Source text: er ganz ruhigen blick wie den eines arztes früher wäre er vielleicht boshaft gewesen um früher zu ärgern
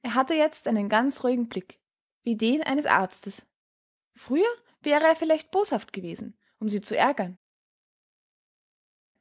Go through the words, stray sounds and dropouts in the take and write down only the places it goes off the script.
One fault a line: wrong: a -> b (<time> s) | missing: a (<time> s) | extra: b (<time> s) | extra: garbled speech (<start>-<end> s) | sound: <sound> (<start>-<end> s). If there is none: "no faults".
extra: hatte jetzt einen (0.1 s)
wrong: früher -> sie (6.7 s)